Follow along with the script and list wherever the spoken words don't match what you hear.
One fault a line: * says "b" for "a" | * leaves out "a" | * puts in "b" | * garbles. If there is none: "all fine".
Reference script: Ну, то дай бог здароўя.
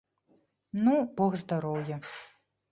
* leaves out "то дай"